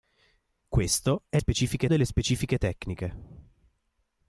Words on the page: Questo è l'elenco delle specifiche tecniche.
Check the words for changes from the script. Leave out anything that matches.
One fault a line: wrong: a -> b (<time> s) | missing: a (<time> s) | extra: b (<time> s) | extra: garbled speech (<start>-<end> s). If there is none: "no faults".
wrong: l'elenco -> specifiche (1.4 s)